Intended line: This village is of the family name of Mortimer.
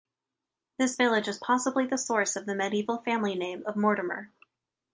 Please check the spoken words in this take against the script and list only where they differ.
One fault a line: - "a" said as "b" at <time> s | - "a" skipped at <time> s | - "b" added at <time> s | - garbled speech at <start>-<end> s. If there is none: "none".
- "possibly the source" added at 1.4 s
- "medieval" added at 2.6 s